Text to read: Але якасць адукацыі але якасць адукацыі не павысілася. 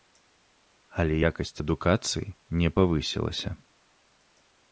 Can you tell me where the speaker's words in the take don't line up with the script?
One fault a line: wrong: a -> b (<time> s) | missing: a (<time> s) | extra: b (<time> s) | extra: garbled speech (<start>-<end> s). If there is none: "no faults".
missing: але якасць адукацыі (2.3 s)